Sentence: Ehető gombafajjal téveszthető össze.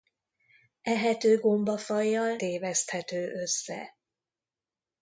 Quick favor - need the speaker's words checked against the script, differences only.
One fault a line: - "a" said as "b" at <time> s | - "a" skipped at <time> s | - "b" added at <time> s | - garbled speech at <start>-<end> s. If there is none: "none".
none